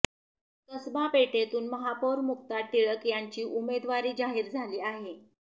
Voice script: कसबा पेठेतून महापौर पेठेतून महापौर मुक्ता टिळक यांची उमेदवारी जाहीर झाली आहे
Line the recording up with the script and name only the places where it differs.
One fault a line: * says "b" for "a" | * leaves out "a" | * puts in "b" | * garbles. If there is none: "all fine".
* leaves out "पेठेतून महापौर"